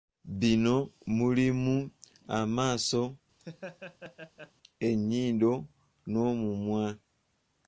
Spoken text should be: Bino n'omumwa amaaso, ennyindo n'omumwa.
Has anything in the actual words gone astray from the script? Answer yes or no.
yes